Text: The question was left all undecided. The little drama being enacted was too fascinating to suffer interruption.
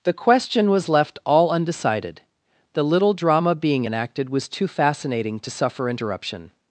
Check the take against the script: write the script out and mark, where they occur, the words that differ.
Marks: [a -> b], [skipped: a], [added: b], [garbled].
The question was left all undecided. The little drama being enacted was too fascinating to suffer interruption.